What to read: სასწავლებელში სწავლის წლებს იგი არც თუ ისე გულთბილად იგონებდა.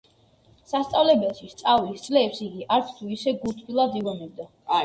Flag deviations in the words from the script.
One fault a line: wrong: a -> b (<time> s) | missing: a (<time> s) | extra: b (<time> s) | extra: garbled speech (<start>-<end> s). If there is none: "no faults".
no faults